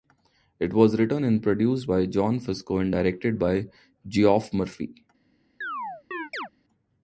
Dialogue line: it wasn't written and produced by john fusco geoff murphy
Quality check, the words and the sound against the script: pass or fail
fail